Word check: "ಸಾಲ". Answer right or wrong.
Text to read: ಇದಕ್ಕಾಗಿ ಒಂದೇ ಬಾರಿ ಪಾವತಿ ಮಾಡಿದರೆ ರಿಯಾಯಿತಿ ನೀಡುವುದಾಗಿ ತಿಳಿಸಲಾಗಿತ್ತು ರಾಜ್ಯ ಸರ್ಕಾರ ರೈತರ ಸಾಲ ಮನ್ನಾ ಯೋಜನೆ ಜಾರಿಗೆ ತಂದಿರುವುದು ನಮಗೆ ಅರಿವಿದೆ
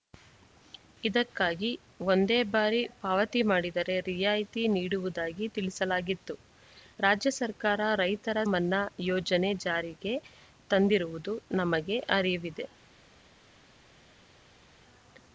wrong